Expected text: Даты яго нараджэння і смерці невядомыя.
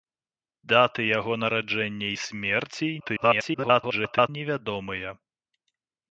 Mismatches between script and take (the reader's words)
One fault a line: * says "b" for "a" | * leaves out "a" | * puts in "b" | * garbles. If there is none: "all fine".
* garbles